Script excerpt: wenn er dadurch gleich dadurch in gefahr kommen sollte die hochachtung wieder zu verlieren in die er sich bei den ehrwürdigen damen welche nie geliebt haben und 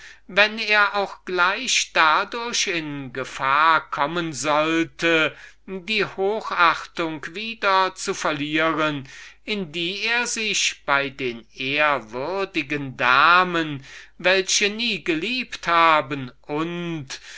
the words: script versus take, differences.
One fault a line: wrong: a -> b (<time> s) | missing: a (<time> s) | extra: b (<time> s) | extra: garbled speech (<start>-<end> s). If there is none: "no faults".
wrong: dadurch -> auch (0.9 s)